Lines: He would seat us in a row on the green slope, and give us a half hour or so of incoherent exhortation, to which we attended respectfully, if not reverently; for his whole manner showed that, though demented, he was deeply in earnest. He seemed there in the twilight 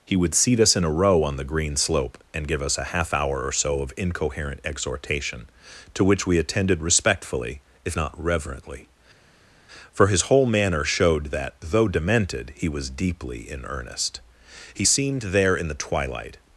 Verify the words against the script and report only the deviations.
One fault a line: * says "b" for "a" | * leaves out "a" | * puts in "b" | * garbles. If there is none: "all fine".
all fine